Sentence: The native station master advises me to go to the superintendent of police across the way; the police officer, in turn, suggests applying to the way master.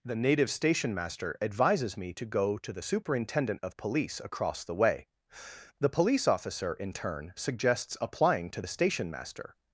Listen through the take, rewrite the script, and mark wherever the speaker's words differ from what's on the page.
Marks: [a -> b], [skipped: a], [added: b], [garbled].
The native station master advises me to go to the superintendent of police across the way; the police officer, in turn, suggests applying to the [way -> station] master.